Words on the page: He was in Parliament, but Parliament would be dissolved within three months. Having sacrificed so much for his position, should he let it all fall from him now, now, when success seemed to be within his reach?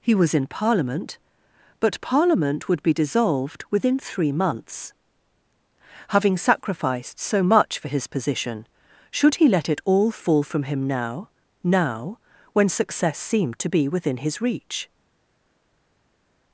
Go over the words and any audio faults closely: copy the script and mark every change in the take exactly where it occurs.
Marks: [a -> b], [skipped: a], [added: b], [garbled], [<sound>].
He was in Parliament, but Parliament would be dissolved within three months. Having sacrificed so much for his position, should he let it all fall from him now, now, when success seemed to be within his reach?